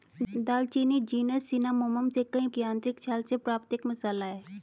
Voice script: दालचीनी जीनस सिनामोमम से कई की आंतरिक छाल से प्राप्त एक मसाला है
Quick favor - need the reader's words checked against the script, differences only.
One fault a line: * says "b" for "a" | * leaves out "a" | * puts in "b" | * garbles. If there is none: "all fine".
all fine